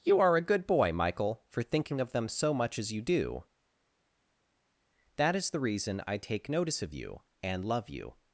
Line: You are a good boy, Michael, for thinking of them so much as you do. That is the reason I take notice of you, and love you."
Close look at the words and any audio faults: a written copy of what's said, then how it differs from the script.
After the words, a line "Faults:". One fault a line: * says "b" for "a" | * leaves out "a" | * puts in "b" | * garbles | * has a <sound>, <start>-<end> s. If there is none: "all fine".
You are a good boy, Michael, for thinking of them so much as you do. That is the reason I take notice of you, and love you."
Faults:
all fine